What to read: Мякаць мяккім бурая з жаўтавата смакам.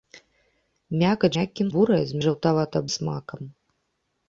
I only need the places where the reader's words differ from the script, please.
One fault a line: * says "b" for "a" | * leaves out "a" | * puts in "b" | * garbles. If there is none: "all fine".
all fine